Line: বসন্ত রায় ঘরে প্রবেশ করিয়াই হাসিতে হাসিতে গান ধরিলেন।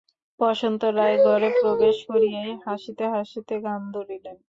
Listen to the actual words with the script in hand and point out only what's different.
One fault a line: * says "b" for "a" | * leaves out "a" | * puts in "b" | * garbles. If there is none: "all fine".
all fine